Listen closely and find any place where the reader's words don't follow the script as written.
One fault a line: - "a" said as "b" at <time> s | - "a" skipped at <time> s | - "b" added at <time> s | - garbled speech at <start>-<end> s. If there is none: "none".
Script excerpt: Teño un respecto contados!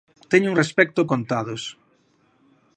none